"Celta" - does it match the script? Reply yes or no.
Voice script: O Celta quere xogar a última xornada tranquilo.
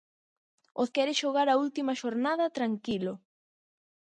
no